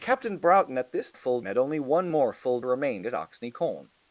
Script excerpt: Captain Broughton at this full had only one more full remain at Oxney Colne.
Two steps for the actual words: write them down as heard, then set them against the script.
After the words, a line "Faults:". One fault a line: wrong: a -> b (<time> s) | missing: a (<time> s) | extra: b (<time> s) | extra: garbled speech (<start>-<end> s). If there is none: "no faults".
Captain Broughton at this full had only one more full remain at Oxney Colne.
Faults:
no faults